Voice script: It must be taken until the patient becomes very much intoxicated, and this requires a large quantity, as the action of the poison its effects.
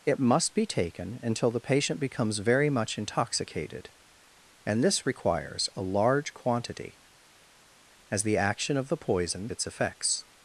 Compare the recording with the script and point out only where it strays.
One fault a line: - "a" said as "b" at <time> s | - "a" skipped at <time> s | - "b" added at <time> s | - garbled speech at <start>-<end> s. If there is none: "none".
none